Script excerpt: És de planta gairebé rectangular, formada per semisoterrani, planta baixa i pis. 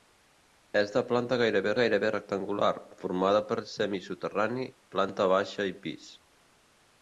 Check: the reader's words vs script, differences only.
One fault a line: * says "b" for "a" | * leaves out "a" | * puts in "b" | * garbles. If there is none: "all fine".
* puts in "gairebé"